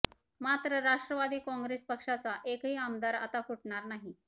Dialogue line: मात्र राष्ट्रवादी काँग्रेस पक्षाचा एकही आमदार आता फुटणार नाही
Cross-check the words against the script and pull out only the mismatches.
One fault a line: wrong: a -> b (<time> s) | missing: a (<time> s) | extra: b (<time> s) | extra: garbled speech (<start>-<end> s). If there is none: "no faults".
no faults